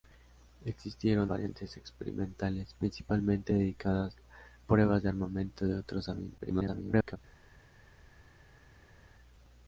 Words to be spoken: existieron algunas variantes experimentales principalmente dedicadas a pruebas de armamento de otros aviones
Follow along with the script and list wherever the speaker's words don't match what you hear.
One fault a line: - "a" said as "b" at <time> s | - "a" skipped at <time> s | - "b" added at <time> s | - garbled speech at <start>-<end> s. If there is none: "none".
- "algunas" skipped at 1.3 s
- "a" skipped at 4.2 s
- garbled speech at 6.4-7.2 s